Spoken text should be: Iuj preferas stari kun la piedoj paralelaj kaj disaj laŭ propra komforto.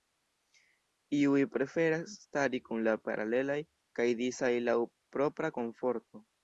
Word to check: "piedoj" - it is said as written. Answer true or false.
false